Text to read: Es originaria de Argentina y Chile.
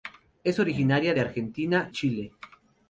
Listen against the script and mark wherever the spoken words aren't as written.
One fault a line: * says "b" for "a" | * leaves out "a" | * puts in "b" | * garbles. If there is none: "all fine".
* leaves out "y"